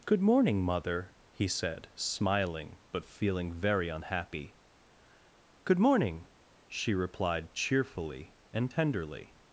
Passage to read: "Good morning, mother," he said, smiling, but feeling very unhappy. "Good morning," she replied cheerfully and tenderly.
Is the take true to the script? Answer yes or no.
yes